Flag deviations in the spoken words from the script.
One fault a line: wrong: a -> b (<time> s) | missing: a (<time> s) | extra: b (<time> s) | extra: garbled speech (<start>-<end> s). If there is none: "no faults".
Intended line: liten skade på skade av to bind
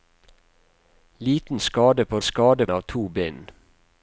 no faults